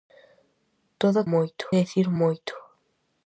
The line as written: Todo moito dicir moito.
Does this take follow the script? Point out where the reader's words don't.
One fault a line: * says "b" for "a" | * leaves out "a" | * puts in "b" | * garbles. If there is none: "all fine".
all fine